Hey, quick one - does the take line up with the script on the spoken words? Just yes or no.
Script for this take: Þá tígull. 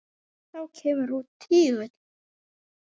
no